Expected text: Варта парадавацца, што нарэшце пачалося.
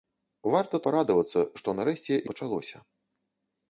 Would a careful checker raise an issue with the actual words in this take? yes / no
no